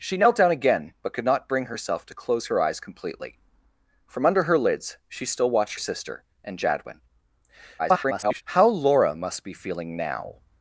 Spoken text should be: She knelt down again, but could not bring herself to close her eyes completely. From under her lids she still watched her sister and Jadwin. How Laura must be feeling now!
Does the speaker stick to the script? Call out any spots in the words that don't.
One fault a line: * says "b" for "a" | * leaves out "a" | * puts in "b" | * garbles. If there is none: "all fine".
* leaves out "her"
* garbles